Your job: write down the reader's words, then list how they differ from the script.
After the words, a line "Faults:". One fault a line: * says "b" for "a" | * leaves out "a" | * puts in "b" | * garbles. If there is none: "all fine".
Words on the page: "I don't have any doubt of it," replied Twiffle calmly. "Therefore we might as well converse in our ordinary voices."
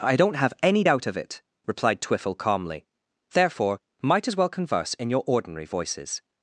"I don't have any doubt of it," replied Twiffle calmly. "Therefore might as well converse in your ordinary voices."
Faults:
* leaves out "we"
* says "your" for "our"